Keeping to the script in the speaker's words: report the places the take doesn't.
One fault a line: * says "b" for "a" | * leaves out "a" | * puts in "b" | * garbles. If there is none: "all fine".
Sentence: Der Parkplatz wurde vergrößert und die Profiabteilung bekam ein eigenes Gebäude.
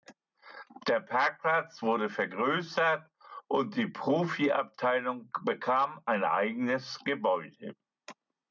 all fine